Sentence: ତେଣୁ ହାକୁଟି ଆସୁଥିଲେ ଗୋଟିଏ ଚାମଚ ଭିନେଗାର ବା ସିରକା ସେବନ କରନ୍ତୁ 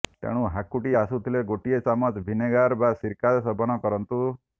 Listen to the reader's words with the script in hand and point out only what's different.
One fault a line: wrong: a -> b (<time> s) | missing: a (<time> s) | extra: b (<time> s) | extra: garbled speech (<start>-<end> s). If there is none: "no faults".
no faults